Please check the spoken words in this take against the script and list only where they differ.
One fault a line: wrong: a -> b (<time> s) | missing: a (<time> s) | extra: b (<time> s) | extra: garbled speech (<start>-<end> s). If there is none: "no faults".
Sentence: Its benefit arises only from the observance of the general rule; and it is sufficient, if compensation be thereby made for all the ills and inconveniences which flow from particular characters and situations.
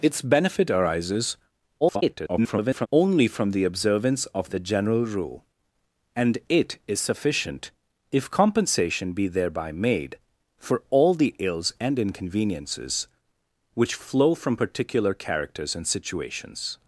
extra: garbled speech (1.8-2.9 s)